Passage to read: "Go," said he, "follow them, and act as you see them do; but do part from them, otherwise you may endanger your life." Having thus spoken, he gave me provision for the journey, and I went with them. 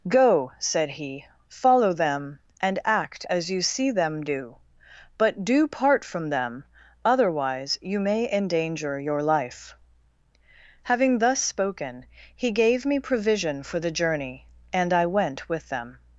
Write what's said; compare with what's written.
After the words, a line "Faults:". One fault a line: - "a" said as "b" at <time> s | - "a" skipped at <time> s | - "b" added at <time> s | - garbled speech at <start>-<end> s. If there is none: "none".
"Go," said he, "follow them, and act as you see them do; but do part from them, otherwise you may endanger your life." Having thus spoken, he gave me provision for the journey, and I went with them.
Faults:
none